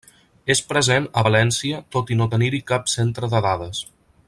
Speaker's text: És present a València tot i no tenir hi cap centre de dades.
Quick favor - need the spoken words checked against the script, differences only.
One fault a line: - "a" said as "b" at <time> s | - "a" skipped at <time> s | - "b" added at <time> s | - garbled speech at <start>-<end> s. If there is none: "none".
none